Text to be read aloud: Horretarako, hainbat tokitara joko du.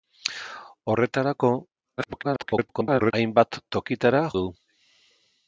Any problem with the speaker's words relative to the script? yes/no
yes